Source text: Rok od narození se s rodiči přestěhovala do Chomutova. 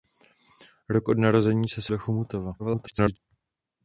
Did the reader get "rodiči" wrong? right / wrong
wrong